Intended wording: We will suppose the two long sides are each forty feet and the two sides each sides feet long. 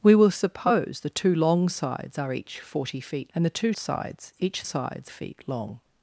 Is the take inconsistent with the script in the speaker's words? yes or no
no